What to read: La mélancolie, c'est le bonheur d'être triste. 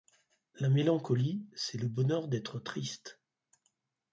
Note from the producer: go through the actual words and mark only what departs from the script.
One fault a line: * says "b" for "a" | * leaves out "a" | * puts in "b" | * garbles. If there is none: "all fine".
all fine